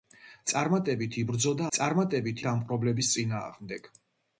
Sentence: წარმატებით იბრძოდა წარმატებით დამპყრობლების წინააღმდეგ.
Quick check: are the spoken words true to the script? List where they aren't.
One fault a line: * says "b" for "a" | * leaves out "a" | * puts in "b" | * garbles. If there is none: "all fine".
all fine